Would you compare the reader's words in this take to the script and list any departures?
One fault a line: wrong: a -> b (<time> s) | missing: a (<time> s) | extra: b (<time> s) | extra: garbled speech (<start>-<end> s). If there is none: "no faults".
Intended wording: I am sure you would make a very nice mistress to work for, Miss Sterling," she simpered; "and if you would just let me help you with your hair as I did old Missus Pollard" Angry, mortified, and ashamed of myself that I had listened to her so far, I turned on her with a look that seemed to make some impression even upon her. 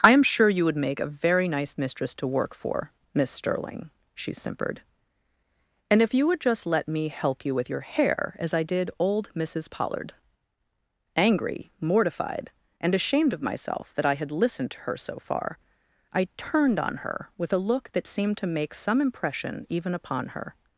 no faults